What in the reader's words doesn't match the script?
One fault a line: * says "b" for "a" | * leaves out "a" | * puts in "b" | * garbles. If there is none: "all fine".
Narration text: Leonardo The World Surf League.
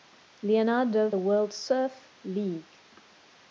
all fine